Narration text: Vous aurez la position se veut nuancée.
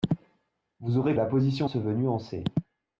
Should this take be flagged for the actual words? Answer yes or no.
no